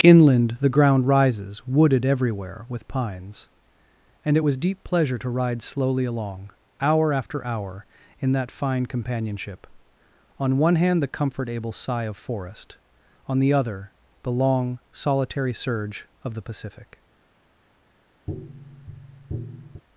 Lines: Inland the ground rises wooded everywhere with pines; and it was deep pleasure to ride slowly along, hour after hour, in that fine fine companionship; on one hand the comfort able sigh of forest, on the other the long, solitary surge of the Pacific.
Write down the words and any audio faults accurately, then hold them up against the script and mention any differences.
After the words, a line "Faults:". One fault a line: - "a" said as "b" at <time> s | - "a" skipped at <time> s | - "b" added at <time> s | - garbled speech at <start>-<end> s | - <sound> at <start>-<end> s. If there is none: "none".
Inland the ground rises wooded everywhere with pines; and it was deep pleasure to ride slowly along, hour after hour, in that fine companionship; on one hand the comfort able sigh of forest, on the other the long, solitary surge of the Pacific.
Faults:
- "fine" skipped at 8.9 s
- tap at 18.3-19.8 s